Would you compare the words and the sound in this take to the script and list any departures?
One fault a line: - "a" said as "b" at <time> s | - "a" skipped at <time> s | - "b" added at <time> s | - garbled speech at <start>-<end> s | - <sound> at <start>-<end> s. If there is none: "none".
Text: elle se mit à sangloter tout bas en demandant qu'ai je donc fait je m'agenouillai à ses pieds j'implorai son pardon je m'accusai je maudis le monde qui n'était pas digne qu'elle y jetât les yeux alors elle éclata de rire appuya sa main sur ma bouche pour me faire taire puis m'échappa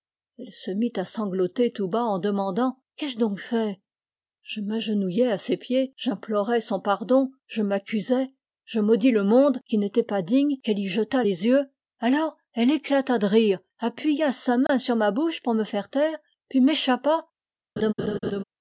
- dropout at 14.7-14.7 s
- laugh at 17.8-18.4 s